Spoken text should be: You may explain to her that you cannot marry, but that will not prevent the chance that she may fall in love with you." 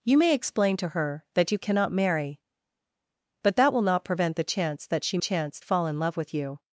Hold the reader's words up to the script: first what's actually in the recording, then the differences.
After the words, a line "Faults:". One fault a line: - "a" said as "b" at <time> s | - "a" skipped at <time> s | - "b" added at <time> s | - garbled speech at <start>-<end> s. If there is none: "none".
You may explain to her that you cannot marry, but that will not prevent the chance that she chance fall in love with you."
Faults:
- "may" said as "chance" at 5.2 s